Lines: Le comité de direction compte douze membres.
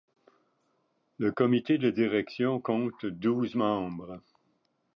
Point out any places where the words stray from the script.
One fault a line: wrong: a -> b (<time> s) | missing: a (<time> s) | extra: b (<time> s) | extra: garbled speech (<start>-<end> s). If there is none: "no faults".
no faults